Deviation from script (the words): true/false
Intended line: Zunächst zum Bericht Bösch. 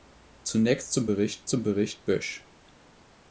true